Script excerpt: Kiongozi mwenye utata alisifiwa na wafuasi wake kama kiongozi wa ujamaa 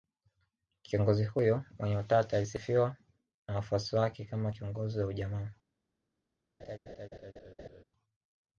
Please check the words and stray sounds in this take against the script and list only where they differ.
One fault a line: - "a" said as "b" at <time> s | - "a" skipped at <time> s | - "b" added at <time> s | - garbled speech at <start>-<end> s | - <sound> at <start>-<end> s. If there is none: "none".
- "huyo" added at 1.2 s
- laugh at 6.6-7.8 s